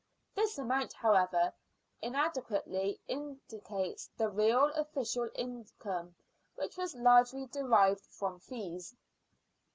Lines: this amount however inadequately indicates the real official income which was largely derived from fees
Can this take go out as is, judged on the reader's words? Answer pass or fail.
pass